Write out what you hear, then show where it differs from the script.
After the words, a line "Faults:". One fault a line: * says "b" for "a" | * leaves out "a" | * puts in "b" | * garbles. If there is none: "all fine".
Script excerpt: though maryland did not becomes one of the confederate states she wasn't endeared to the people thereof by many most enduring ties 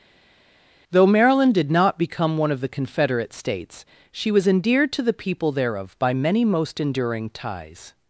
though maryland did not become one of the confederate states she was endeared to the people thereof by many most enduring ties
Faults:
* says "become" for "becomes"
* says "was" for "wasn't"